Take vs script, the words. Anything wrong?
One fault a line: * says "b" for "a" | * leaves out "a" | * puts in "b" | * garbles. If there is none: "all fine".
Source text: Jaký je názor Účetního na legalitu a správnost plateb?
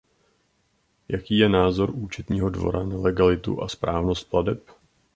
* puts in "dvora"